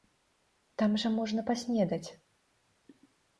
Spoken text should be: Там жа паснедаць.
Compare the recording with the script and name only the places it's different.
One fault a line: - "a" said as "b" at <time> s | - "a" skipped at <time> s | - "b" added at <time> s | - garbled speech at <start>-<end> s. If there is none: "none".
- "можна" added at 1.2 s